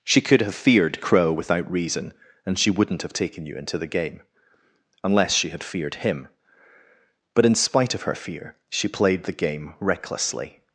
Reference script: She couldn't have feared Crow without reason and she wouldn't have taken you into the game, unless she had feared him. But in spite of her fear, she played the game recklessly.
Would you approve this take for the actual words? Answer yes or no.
no